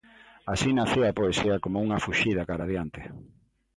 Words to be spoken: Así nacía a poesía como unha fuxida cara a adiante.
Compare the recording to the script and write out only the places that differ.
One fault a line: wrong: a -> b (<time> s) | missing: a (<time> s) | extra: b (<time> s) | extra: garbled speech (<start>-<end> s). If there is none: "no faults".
no faults